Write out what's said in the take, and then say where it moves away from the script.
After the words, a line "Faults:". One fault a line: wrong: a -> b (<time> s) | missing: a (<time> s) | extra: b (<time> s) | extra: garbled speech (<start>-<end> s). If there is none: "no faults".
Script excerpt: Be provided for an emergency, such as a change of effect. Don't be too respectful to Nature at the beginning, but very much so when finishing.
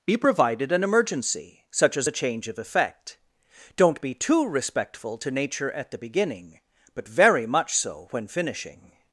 Be provided an emergency, such as a change of effect. Don't be too respectful to Nature at the beginning, but very much so when finishing.
Faults:
missing: for (0.7 s)